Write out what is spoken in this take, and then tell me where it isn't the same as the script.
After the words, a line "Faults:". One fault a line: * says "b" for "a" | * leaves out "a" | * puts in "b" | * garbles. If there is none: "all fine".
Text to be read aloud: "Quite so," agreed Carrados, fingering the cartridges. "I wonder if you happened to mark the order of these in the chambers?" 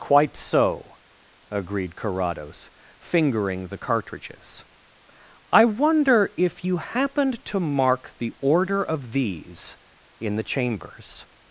"Quite so," agreed Carrados, fingering the cartridges. "I wonder if you happened to mark the order of these in the chambers?"
Faults:
all fine